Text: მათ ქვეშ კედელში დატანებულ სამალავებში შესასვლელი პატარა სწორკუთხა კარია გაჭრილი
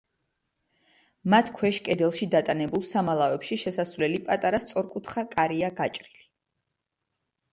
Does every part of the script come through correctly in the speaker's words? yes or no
yes